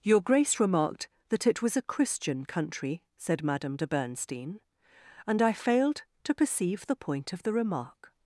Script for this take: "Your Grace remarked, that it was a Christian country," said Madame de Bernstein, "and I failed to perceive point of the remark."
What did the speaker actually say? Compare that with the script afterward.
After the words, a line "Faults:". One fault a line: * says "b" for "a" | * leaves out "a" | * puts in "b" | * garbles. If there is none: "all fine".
"Your Grace remarked, that it was a Christian country," said Madame de Bernstein, "and I failed to perceive the point of the remark."
Faults:
* puts in "the"